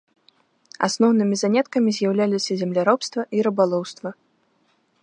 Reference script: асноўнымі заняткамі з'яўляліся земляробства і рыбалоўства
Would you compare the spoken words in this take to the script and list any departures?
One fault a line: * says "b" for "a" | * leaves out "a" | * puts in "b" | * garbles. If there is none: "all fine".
all fine